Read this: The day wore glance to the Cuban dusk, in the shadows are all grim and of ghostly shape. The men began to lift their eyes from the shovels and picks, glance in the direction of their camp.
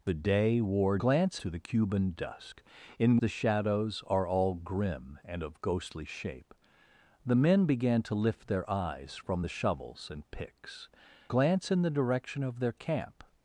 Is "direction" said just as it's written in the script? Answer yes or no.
yes